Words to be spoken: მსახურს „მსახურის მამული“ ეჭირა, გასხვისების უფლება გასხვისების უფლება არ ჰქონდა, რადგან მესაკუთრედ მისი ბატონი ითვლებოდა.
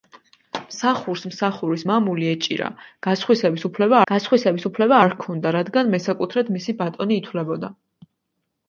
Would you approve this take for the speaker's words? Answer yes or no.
yes